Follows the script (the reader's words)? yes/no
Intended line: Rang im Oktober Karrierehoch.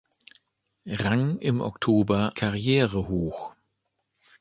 yes